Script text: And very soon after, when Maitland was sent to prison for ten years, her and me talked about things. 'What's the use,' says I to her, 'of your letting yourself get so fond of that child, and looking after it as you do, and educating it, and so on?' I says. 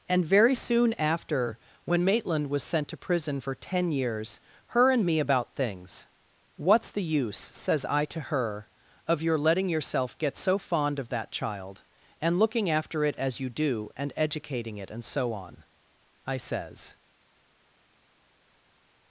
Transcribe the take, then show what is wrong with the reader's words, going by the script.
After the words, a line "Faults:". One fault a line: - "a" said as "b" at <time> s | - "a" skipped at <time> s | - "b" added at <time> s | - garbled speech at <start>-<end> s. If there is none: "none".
And very soon after, when Maitland was sent to prison for ten years, her and me about things. 'What's the use,' says I to her, 'of your letting yourself get so fond of that child, and looking after it as you do, and educating it, and so on?' I says.
Faults:
- "talked" skipped at 5.2 s